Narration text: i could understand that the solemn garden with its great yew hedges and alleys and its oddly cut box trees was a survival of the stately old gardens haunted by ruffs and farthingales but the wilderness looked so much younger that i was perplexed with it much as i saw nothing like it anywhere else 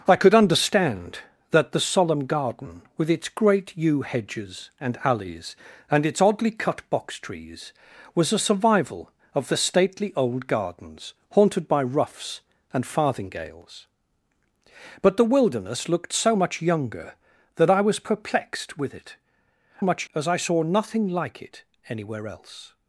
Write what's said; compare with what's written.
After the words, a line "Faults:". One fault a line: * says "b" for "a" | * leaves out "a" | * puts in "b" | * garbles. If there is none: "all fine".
i could understand that the solemn garden with its great yew hedges and alleys and its oddly cut box trees was a survival of the stately old gardens haunted by ruffs and farthingales but the wilderness looked so much younger that i was perplexed with it much as i saw nothing like it anywhere else
Faults:
all fine